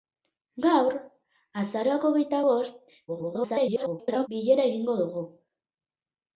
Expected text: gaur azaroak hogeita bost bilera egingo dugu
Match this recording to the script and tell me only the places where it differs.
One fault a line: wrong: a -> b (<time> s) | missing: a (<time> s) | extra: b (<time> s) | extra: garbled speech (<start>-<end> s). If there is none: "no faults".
extra: garbled speech (3.1-4.3 s)